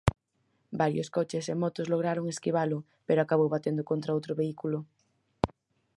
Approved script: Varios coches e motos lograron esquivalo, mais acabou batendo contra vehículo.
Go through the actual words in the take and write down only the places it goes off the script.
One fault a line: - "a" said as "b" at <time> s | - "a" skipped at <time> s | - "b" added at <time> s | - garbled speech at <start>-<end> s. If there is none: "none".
- "mais" said as "pero" at 3.1 s
- "outro" added at 4.2 s